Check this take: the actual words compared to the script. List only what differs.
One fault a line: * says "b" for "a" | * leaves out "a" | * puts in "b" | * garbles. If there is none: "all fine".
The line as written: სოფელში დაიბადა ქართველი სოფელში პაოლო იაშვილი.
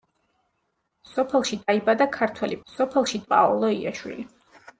all fine